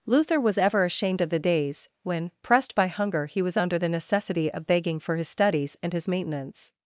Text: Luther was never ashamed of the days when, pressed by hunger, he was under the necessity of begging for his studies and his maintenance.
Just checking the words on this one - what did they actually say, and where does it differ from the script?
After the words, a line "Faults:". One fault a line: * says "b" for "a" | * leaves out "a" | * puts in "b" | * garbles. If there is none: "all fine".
Luther was ever ashamed of the days when, pressed by hunger, he was under the necessity of begging for his studies and his maintenance.
Faults:
* says "ever" for "never"